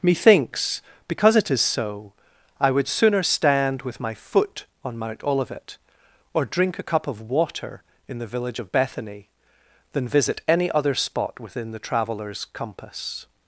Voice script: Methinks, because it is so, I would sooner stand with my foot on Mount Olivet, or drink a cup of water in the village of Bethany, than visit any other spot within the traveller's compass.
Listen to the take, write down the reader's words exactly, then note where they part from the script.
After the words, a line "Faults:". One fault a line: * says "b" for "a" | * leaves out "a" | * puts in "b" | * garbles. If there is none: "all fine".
Methinks, because it is so, I would sooner stand with my foot on Mount Olivet, or drink a cup of water in the village of Bethany, than visit any other spot within the traveller's compass.
Faults:
all fine